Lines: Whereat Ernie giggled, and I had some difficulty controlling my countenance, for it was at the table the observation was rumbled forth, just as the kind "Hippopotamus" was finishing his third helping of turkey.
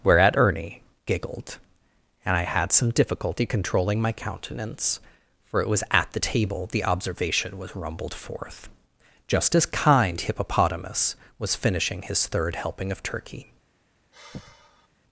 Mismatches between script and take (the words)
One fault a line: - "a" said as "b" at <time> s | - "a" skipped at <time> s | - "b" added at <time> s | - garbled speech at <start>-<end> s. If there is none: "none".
- "the" skipped at 9.7 s